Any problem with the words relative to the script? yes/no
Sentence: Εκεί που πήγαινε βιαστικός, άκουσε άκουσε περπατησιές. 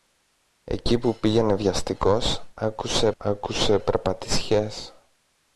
no